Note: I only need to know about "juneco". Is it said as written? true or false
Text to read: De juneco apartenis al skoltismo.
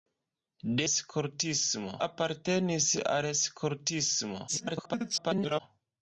false